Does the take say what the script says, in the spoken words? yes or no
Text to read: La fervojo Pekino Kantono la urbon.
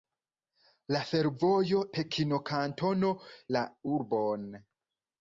yes